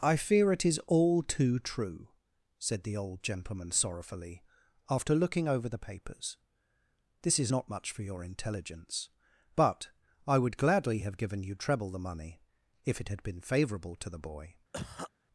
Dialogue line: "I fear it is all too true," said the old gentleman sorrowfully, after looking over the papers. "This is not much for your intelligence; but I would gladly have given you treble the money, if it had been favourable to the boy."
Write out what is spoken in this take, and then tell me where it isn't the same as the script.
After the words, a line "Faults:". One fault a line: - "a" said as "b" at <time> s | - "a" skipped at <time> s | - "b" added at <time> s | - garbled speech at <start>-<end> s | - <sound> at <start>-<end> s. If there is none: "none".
"I fear it is all too true," said the old gentleman sorrowfully, after looking over the papers. "This is not much for your intelligence; but I would gladly have given you treble the money, if it had been favourable to the boy."
Faults:
- cough at 14.7-15.1 s